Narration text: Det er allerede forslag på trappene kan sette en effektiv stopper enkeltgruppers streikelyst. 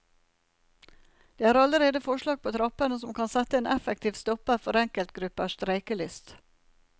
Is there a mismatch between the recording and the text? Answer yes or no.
yes